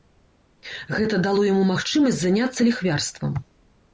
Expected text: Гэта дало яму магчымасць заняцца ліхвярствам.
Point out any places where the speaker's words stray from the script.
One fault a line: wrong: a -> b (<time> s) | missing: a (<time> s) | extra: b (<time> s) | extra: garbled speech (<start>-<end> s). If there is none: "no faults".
no faults